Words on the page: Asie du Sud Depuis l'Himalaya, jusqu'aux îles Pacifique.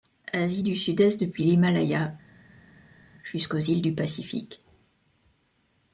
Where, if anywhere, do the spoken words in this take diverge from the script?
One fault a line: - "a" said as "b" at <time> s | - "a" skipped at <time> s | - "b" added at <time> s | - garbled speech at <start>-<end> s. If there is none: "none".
- "Est" added at 1.0 s
- "du" added at 3.8 s